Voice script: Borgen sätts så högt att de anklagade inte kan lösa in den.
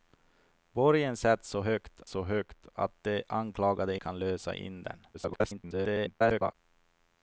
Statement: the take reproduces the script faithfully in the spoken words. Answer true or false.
false